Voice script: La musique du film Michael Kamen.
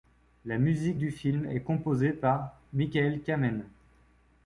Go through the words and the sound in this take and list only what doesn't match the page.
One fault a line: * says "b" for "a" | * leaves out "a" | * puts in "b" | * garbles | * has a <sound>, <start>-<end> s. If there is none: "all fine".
* puts in "est composée par"